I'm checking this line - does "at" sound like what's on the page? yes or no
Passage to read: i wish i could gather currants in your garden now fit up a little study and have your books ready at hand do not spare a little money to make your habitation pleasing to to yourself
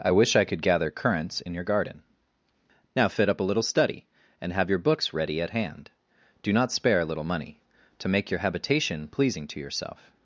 yes